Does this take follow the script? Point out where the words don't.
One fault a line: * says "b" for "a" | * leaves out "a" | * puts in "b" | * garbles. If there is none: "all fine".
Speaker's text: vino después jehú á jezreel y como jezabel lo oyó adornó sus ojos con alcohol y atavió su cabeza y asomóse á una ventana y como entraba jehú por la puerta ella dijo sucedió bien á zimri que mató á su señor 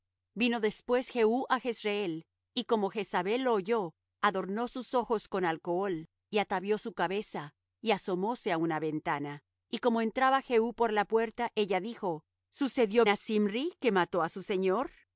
* leaves out "bien"